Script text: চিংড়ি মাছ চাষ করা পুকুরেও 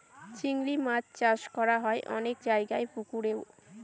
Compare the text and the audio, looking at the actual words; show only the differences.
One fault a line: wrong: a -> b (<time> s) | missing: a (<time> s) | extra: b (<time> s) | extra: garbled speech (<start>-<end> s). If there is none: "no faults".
extra: হয় অনেক জায়গায় (1.8 s)